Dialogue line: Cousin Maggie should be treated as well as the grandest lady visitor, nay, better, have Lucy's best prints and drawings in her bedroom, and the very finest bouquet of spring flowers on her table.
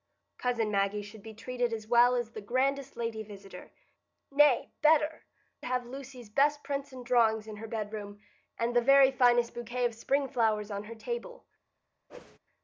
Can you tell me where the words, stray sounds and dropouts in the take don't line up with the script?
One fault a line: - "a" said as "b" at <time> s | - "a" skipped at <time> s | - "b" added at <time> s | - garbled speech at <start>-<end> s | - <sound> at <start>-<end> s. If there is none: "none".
- whoosh at 12.1-12.4 s